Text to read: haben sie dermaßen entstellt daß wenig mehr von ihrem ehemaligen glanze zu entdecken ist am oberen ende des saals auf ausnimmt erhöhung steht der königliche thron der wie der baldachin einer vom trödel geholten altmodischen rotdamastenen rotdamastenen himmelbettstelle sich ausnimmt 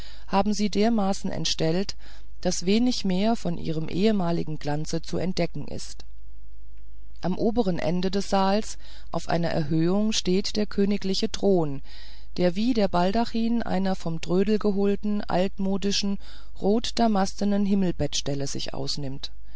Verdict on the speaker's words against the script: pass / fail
fail